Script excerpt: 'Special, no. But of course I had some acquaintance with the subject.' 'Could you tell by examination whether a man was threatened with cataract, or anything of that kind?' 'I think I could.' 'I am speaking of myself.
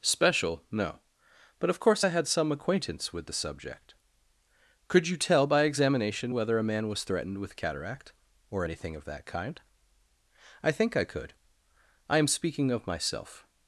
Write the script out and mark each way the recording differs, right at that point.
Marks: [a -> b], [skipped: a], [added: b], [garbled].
'Special, no. But of course I had some acquaintance with the subject.' 'Could you tell by examination whether a man was threatened with cataract, or anything of that kind?' 'I think I could.' 'I am speaking of myself.